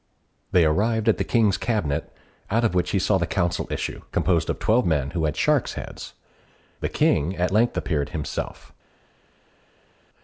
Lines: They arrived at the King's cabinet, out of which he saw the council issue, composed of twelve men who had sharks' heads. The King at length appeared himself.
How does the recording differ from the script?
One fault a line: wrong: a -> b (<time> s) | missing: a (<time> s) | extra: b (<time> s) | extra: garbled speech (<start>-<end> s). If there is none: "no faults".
no faults